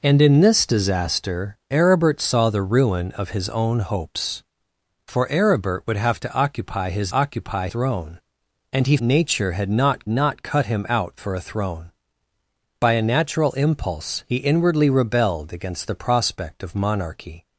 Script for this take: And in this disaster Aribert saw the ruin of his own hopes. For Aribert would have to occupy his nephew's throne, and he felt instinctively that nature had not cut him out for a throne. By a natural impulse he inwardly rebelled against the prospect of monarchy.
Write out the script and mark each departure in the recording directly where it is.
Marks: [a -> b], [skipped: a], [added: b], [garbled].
And in this disaster Aribert saw the ruin of his own hopes. For Aribert would have to occupy his [nephew's -> occupy] throne, and he [skipped: felt instinctively that] nature had not [added: not] cut him out for a throne. By a natural impulse he inwardly rebelled against the prospect of monarchy.